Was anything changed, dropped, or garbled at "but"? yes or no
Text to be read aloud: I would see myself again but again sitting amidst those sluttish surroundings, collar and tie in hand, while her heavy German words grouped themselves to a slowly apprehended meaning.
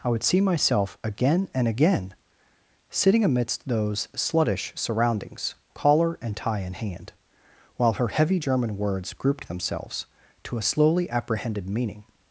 yes